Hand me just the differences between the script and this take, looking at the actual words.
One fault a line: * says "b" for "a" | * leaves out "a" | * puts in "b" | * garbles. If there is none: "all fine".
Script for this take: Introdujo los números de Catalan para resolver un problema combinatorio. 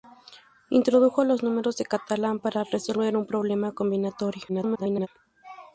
* garbles